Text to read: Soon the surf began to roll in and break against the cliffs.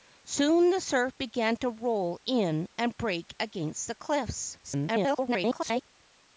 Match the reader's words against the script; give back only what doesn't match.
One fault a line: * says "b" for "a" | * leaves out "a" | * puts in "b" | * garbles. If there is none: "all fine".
* garbles